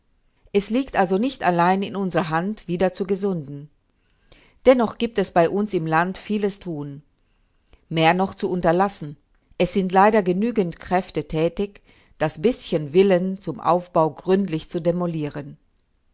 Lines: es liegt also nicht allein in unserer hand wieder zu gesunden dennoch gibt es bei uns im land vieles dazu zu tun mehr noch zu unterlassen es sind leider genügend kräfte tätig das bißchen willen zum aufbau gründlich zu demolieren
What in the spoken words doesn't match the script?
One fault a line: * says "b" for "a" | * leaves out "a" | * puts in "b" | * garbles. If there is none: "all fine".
* leaves out "dazu zu"